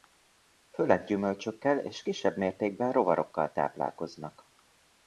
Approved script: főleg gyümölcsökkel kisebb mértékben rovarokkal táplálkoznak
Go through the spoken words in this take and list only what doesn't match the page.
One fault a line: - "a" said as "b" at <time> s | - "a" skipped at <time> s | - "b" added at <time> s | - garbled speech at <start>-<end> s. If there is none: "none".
- "és" added at 1.8 s